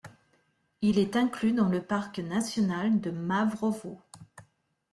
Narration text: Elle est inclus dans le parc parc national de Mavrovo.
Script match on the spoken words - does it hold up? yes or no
no